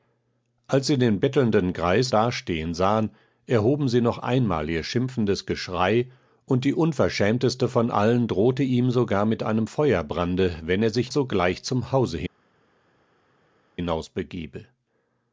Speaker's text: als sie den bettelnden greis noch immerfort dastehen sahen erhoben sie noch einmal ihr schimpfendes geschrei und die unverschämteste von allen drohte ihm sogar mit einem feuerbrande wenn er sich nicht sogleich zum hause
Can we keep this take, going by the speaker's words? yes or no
no